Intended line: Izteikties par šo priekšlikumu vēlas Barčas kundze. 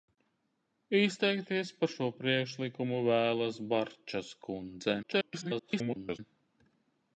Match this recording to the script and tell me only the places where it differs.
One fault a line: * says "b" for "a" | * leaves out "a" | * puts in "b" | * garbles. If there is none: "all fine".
* garbles